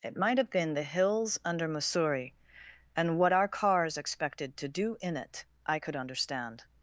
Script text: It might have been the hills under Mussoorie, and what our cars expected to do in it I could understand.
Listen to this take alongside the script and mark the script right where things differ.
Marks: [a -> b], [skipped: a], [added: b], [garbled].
It might have been the hills under Mussoorie, and what our cars expected to do in it I could understand.